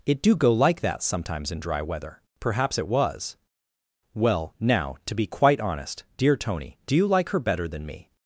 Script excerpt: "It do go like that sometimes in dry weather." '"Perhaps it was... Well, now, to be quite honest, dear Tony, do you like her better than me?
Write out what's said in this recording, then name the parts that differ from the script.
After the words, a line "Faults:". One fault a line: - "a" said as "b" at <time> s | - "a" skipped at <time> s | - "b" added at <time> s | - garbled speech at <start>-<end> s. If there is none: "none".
"It do go like that sometimes in dry weather." '"Perhaps it was... Well, now, to be quite honest, dear Tony, do you like her better than me?
Faults:
none